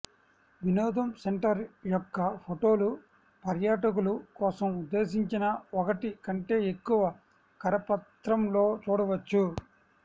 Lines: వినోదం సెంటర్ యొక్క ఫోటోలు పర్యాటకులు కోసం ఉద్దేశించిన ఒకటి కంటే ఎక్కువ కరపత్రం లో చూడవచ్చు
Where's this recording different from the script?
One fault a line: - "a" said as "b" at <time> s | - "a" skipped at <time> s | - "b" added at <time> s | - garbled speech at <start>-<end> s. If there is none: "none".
none